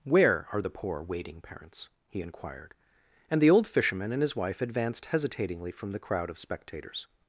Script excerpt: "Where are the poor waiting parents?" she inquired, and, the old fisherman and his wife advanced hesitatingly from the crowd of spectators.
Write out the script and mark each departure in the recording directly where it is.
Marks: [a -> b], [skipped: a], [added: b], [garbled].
"Where are the poor waiting parents?" [she -> he] inquired, and, the old fisherman and his wife advanced hesitatingly from the crowd of spectators.